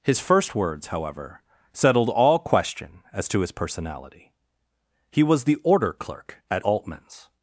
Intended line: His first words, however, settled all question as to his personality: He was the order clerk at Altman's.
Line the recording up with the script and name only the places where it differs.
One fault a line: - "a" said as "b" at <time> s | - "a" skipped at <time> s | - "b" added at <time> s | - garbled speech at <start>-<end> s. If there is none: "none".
none